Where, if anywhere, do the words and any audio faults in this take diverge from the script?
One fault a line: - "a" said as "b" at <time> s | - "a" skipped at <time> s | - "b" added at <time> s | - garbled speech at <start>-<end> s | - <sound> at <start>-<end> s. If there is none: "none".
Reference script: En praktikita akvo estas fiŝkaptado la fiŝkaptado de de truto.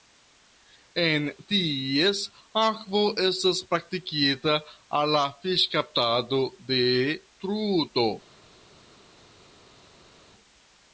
- "praktikita" said as "ties" at 1.5 s
- "fiŝkaptado" said as "praktikita" at 3.7 s
- "de" skipped at 6.8 s